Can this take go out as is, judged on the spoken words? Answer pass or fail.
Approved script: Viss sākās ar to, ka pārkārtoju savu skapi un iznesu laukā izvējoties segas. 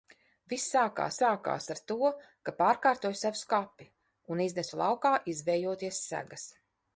fail